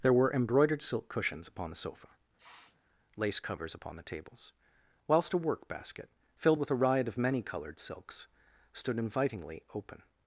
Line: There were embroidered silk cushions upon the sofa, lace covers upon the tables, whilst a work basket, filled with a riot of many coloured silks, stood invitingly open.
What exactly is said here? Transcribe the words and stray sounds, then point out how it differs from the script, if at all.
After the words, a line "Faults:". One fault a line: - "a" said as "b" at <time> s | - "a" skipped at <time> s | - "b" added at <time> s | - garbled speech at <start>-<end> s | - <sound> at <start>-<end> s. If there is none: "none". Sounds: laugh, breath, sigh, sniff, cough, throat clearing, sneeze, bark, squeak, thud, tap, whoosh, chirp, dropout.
There were embroidered silk cushions upon the sofa, lace covers upon the tables, whilst a work basket, filled with a riot of many coloured silks, stood invitingly open.
Faults:
- sniff at 2.4-2.8 s